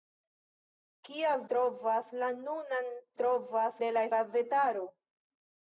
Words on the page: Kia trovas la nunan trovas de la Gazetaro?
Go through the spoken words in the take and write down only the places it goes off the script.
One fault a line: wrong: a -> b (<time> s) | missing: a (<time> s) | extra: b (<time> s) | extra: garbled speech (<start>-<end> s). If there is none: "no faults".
no faults